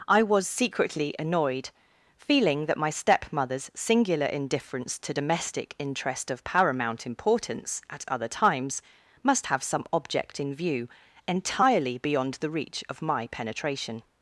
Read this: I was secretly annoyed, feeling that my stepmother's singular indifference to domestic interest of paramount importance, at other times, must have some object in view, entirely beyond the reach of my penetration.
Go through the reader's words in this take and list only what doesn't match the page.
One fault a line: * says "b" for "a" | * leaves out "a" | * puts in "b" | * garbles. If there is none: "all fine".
all fine